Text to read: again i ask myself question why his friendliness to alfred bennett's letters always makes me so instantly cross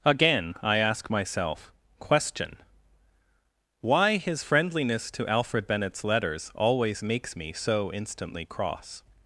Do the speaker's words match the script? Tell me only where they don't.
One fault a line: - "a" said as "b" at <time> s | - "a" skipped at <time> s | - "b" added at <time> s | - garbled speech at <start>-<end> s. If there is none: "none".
none